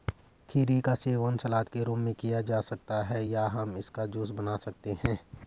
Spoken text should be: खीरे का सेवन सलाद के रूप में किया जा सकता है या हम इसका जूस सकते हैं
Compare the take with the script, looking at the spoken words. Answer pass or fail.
fail